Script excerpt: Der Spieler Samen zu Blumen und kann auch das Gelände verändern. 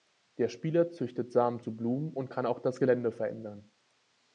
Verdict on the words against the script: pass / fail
fail